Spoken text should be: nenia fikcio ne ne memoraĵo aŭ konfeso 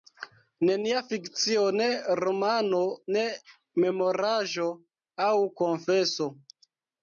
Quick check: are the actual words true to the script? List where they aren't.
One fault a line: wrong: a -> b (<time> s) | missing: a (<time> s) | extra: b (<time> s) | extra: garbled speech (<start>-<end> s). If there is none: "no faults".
extra: romano (2.2 s)